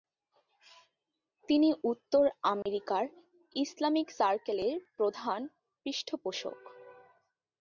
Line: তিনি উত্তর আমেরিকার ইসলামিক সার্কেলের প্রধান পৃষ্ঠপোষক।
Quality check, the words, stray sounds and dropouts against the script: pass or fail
fail